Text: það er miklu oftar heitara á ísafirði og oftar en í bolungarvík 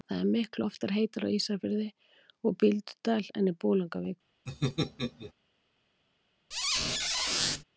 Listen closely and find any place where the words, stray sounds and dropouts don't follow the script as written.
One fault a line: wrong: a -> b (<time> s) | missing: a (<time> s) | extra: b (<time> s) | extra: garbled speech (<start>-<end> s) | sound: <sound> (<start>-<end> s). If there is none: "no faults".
wrong: oftar -> bíldudal (2.6 s)
sound: laugh (4.5-5.3 s)
sound: squeak (6.5-7.6 s)